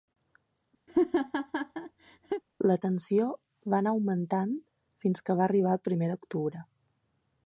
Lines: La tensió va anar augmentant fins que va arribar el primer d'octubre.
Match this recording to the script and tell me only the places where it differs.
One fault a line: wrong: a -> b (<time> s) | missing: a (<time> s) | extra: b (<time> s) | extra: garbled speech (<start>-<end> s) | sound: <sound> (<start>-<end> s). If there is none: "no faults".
sound: laugh (0.9-2.4 s)